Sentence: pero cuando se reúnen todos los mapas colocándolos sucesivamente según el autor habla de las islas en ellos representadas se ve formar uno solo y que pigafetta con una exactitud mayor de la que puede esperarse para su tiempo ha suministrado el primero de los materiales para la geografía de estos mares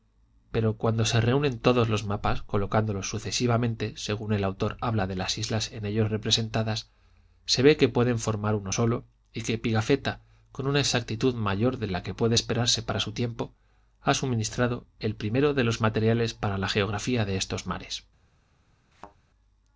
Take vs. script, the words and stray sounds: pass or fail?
fail